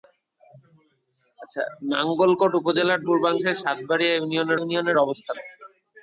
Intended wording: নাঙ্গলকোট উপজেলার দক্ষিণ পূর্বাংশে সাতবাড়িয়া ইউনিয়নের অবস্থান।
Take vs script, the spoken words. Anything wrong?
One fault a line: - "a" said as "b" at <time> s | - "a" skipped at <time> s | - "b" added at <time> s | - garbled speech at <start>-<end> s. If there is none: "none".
- "দক্ষিণ" skipped at 3.0 s
- "ইউনিয়নের" added at 4.6 s